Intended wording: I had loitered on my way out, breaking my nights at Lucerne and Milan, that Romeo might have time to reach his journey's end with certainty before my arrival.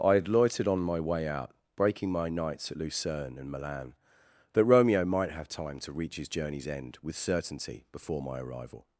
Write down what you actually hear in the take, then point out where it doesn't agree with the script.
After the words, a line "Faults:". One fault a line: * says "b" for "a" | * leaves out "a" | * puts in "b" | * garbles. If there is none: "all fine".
I had loitered on my way out, breaking my nights at Lucerne and Milan, that Romeo might have time to reach his journey's end with certainty before my arrival.
Faults:
all fine